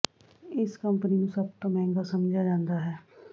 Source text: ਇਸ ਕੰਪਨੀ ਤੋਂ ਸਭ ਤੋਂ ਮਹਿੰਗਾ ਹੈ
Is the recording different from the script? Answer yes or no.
yes